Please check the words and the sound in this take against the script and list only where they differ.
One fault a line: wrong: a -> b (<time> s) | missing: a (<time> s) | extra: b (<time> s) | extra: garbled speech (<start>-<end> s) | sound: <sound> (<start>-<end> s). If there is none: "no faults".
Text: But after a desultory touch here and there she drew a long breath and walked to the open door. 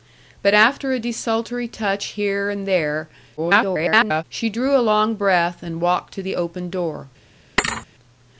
extra: garbled speech (3.4-4.2 s)
sound: thud (7.6-7.9 s)